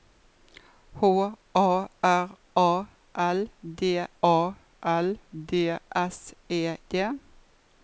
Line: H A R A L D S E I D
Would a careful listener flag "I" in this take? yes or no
yes